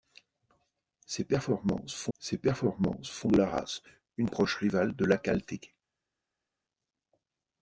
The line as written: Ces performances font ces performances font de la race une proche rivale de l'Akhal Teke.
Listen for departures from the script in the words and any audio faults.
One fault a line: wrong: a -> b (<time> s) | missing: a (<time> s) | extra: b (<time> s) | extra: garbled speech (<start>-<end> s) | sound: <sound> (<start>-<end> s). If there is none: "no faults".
no faults